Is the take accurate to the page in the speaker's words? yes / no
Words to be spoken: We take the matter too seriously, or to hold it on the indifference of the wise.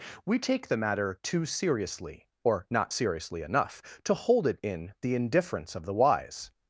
no